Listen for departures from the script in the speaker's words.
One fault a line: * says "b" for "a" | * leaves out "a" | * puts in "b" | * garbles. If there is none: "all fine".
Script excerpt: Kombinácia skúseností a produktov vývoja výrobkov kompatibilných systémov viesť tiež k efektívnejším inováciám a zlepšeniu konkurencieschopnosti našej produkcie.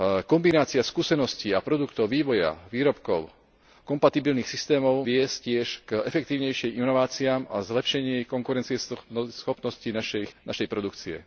all fine